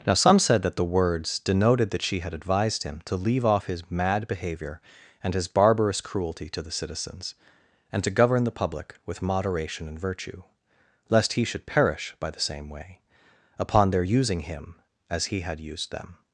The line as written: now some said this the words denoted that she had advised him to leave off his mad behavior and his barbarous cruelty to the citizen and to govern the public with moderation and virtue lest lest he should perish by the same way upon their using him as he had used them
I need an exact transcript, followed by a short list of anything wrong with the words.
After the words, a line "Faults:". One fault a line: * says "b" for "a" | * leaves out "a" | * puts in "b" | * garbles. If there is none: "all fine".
now some said that the words denoted that she had advised him to leave off his mad behavior and his barbarous cruelty to the citizens and to govern the public with moderation and virtue lest he should perish by the same way upon their using him as he had used them
Faults:
* says "that" for "this"
* says "citizens" for "citizen"
* leaves out "lest"